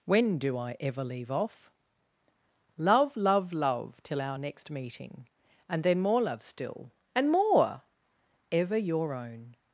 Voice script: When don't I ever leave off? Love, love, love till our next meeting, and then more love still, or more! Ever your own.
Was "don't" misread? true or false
true